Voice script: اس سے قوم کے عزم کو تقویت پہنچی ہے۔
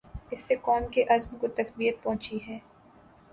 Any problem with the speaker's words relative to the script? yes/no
no